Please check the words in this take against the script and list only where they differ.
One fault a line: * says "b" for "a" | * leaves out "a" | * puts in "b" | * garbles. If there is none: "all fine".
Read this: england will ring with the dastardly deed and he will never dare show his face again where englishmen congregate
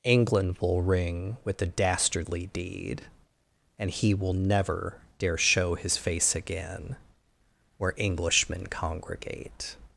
all fine